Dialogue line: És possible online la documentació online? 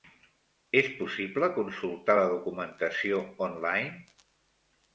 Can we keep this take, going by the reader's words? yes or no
no